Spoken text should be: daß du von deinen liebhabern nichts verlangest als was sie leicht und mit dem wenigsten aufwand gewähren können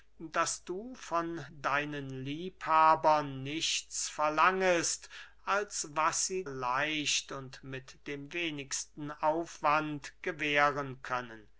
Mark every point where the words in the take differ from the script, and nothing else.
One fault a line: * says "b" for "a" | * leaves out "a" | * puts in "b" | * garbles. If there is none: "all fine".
all fine